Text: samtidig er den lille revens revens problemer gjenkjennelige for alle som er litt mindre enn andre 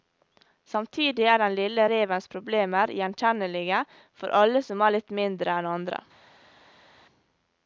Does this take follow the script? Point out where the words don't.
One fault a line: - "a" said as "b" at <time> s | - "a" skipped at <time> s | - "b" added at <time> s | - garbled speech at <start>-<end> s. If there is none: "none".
- "revens" skipped at 2.3 s